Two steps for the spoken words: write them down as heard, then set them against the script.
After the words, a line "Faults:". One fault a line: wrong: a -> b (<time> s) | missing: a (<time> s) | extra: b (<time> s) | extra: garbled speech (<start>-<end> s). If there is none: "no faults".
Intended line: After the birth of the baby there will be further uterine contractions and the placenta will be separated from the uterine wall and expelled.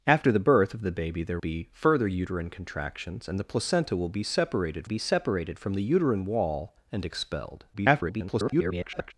After the birth of the baby there be further uterine contractions and the placenta will be separated be separated from the uterine wall and expelled. [garbled]
Faults:
missing: will (1.4 s)
extra: be separated (4.8 s)
extra: garbled speech (7.7-9.1 s)